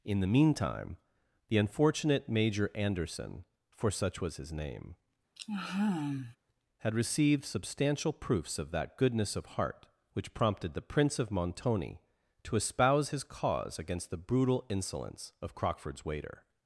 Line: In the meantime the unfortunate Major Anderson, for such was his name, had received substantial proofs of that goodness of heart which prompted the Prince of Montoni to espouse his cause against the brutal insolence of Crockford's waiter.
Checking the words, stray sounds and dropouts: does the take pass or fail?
fail